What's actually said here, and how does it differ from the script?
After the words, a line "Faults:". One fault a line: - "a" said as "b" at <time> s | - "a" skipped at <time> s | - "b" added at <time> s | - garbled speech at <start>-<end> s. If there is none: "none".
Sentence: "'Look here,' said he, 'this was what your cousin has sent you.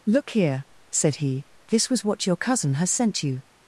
"'Look here,' said he, 'this was what your cousin has sent you.
Faults:
none